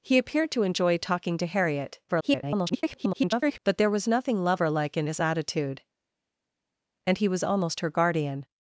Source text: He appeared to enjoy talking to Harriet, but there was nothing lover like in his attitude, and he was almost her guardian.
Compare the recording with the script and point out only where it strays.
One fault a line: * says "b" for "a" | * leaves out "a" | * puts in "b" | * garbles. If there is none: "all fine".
* garbles